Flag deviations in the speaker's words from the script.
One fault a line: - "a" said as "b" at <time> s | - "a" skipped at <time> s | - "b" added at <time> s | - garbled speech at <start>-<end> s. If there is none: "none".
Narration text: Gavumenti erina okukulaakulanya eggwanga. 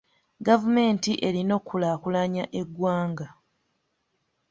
none